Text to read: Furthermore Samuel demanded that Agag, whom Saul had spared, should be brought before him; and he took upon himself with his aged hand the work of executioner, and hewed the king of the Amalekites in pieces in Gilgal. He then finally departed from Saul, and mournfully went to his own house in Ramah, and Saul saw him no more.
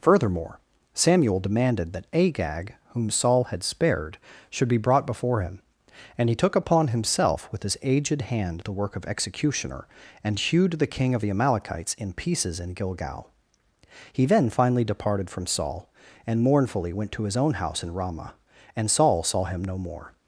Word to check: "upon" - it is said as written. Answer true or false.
true